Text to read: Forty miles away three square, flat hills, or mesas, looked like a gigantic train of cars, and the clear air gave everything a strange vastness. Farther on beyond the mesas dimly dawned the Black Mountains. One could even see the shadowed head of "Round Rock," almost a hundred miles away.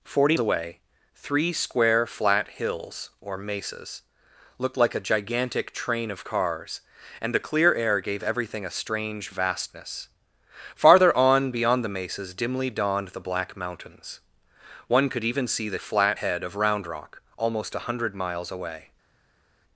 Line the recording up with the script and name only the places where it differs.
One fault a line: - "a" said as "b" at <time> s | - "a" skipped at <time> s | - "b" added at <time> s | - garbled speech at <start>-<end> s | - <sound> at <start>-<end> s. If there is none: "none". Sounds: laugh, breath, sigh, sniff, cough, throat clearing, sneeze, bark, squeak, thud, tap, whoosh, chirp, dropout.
- "miles" skipped at 0.4 s
- "shadowed" said as "flat" at 15.8 s